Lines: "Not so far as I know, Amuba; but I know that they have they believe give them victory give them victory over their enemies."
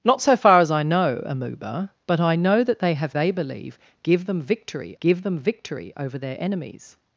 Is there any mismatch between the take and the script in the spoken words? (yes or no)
no